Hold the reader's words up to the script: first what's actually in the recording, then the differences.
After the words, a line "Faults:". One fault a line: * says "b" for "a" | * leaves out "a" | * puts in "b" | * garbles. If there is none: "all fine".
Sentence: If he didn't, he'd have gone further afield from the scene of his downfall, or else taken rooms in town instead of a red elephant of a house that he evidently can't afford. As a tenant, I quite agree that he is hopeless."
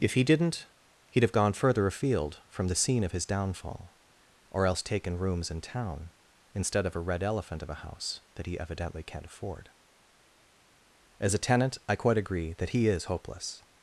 If he didn't, he'd have gone further afield from the scene of his downfall, or else taken rooms in town instead of a red elephant of a house that he evidently can't afford. As a tenant, I quite agree that he is hopeless."
Faults:
all fine